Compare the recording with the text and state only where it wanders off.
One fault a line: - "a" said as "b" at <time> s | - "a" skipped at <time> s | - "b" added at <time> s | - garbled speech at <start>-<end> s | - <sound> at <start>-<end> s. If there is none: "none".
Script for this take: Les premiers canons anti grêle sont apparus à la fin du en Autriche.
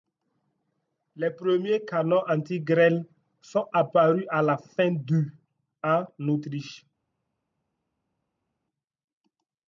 none